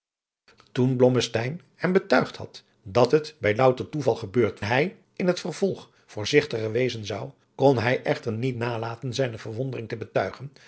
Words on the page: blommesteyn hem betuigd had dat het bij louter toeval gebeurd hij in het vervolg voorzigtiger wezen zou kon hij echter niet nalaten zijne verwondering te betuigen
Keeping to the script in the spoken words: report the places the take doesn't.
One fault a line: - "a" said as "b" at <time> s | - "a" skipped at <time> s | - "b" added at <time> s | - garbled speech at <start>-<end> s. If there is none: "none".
none